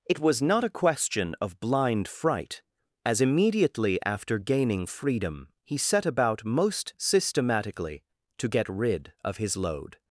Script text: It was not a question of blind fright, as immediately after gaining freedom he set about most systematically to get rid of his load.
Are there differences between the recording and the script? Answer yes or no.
no